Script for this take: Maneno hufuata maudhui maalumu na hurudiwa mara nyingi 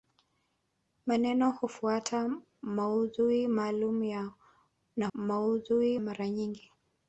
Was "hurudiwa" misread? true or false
true